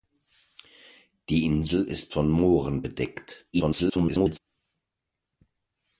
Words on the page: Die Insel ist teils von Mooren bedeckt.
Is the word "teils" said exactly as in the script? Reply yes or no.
no